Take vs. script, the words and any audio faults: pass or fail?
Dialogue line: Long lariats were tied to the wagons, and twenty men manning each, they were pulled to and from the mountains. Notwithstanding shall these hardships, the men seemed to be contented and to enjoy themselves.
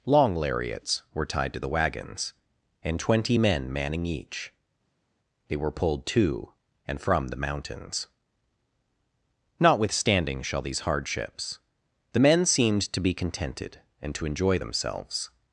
pass